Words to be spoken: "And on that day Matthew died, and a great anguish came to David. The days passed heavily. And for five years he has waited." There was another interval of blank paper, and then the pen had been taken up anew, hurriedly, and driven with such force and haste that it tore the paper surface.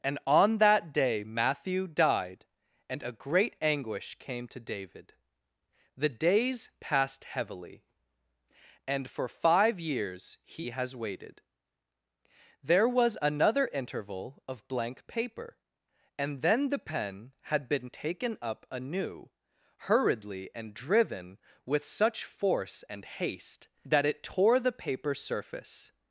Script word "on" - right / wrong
right